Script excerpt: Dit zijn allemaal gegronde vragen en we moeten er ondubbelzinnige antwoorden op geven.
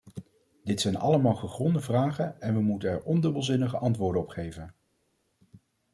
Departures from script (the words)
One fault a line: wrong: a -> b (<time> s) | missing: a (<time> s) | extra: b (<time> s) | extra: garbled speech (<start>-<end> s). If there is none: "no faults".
no faults